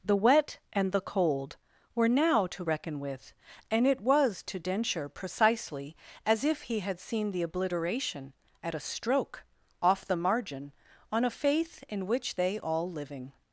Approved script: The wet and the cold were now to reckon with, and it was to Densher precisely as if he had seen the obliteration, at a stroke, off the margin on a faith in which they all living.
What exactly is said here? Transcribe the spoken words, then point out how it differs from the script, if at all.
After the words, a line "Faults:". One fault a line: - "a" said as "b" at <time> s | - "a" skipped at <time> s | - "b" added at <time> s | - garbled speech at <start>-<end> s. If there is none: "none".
The wet and the cold were now to reckon with, and it was to Densher precisely as if he had seen the obliteration, at a stroke, off the margin on a faith in which they all living.
Faults:
none